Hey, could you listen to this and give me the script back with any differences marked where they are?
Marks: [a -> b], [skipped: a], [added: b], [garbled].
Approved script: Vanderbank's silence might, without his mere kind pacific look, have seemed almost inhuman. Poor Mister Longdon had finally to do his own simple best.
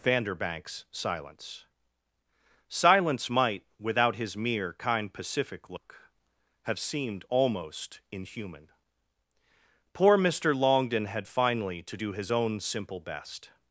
Vanderbank's silence [added: silence] might, without his mere kind pacific look, have seemed almost inhuman. Poor Mister Longdon had finally to do his own simple best.